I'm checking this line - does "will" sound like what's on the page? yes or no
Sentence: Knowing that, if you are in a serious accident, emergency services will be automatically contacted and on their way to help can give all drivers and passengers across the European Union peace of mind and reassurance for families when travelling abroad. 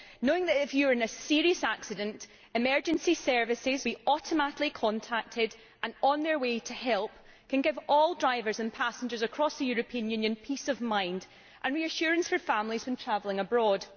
no